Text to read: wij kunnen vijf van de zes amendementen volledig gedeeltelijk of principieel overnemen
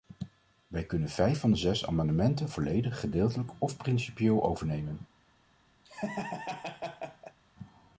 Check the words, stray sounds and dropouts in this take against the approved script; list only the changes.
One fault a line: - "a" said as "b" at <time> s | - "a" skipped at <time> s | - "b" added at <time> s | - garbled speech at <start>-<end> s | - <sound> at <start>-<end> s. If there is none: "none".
- laugh at 5.8-7.4 s